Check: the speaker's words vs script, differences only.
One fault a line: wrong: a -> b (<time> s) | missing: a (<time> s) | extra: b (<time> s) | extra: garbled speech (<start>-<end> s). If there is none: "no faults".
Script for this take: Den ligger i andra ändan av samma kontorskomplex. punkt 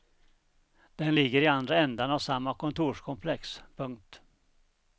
no faults